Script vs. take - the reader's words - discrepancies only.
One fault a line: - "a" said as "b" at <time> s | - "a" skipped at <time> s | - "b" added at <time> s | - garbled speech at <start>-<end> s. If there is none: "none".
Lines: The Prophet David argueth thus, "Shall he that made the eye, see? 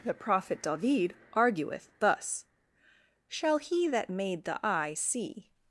none